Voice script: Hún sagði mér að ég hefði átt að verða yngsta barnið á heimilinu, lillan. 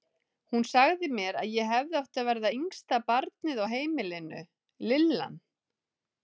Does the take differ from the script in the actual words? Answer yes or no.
no